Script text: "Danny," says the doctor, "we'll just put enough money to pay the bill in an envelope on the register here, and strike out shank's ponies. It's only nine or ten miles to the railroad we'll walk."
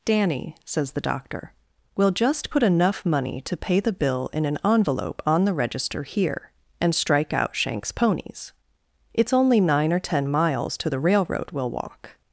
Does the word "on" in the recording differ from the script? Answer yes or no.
no